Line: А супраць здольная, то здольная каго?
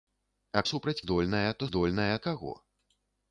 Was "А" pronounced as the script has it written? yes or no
yes